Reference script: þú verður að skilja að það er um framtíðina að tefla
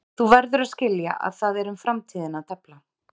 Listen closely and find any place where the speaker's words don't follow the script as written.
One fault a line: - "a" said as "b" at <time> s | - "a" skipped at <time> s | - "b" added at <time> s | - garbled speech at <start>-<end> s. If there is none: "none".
none